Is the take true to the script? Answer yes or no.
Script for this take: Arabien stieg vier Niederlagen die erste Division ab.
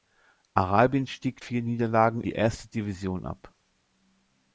yes